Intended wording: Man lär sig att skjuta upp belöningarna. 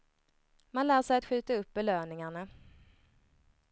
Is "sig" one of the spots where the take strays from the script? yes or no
no